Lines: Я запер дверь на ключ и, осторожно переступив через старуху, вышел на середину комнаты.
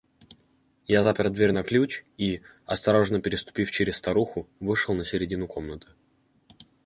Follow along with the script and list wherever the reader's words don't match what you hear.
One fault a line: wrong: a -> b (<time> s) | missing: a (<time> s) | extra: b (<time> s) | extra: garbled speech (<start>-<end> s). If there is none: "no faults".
no faults